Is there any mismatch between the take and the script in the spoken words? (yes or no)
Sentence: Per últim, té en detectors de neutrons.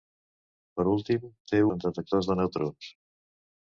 no